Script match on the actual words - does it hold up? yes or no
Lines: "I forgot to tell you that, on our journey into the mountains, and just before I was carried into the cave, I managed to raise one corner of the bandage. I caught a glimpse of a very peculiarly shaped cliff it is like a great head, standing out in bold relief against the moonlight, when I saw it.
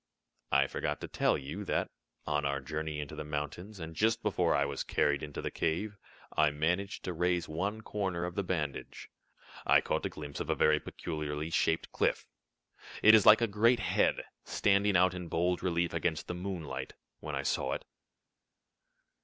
yes